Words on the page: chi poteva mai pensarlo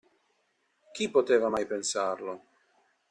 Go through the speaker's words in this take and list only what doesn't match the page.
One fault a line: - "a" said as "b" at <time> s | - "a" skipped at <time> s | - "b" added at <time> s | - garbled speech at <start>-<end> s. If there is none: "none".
none